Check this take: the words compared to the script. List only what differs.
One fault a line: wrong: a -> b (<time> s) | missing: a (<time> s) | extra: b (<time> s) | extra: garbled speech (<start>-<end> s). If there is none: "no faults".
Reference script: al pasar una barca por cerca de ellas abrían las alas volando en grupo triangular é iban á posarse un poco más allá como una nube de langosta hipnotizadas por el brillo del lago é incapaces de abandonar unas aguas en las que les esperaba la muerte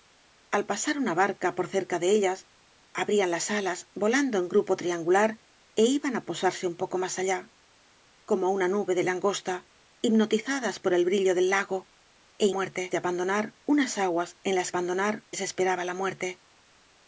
wrong: incapaces -> muerte (12.6 s)
wrong: que -> abandonar (14.7 s)